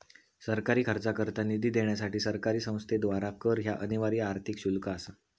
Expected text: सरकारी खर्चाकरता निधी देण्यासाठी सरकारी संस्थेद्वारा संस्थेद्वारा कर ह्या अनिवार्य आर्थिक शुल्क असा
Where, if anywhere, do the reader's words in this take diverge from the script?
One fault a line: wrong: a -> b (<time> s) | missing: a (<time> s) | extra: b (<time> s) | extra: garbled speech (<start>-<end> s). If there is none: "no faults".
missing: संस्थेद्वारा (3.3 s)